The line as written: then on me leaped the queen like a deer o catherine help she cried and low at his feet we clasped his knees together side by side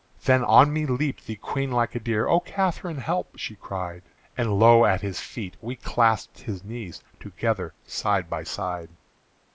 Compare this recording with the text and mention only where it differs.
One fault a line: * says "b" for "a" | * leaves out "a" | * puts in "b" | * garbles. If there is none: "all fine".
all fine